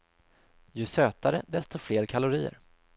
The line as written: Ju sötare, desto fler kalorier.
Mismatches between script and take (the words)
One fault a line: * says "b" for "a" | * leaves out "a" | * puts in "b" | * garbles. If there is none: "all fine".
all fine